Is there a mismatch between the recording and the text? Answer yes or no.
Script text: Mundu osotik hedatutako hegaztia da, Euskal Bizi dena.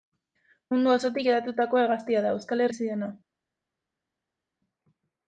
no